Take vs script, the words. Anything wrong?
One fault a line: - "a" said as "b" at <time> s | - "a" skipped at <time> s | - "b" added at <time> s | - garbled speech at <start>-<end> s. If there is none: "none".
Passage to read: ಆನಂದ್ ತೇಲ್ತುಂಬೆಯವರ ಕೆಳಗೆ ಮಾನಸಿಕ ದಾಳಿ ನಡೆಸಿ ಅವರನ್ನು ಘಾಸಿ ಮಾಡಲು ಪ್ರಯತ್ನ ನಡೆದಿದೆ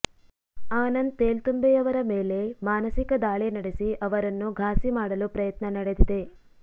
- "ಕೆಳಗೆ" said as "ಮೇಲೆ" at 2.1 s